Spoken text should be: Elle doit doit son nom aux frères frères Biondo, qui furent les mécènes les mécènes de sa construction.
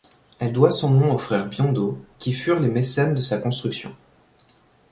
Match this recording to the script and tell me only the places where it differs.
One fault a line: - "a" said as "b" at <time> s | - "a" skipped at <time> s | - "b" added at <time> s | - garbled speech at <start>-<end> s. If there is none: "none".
- "doit" skipped at 0.7 s
- "frères" skipped at 1.5 s
- "les mécènes" skipped at 3.1 s